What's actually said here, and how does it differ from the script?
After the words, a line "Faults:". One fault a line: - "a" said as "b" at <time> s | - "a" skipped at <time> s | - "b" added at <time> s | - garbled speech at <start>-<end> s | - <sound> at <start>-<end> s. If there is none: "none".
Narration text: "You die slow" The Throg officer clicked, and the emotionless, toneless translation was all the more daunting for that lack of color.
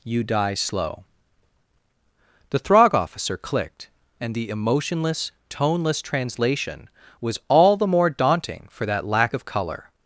"You die slow" The Throg officer clicked, and the emotionless, toneless translation was all the more daunting for that lack of color.
Faults:
none